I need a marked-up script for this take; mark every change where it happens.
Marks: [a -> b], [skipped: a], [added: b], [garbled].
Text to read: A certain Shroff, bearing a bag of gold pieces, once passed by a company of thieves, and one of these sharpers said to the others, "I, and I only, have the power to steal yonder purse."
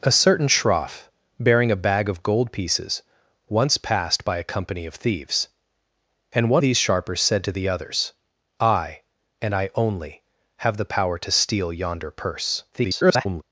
A certain Shroff, bearing a bag of gold pieces, once passed by a company of thieves, and one [skipped: of] these sharpers said to the others, "I, and I only, have the power to steal yonder purse." [garbled]